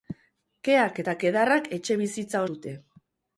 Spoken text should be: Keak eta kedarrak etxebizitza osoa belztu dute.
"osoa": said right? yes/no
no